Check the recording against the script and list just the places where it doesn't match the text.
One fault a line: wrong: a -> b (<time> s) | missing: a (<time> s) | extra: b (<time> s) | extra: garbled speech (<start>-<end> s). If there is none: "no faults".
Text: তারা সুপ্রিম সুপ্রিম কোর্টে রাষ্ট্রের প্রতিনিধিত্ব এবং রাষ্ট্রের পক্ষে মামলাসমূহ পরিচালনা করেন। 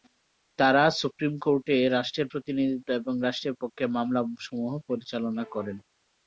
missing: সুপ্রিম (1.3 s)